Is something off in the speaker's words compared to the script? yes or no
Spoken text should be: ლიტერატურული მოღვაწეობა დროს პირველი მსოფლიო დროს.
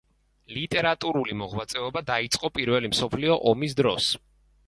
yes